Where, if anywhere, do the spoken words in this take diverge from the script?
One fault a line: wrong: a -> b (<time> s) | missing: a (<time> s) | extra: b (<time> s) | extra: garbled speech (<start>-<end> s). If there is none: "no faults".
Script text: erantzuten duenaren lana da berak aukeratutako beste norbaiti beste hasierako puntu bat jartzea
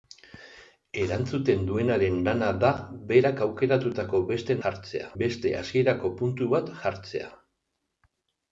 wrong: norbaiti -> jartzea (4.6 s)